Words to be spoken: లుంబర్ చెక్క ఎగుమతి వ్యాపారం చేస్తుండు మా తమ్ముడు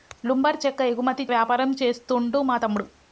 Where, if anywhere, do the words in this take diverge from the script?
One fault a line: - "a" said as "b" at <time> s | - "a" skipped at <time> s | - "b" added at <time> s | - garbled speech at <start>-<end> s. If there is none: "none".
none